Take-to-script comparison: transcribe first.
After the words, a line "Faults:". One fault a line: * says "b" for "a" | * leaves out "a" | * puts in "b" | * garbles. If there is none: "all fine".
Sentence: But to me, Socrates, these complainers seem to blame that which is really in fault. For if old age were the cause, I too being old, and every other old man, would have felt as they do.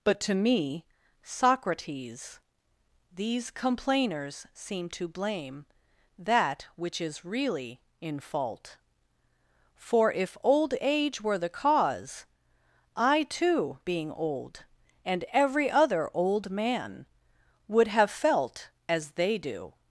But to me, Socrates, these complainers seem to blame that which is really in fault. For if old age were the cause, I too being old, and every other old man, would have felt as they do.
Faults:
all fine